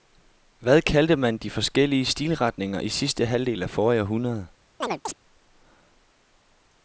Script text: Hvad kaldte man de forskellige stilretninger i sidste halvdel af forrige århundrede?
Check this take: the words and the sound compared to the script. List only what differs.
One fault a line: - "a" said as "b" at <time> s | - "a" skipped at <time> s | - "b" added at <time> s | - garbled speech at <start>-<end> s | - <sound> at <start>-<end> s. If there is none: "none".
- chirp at 4.8-5.1 s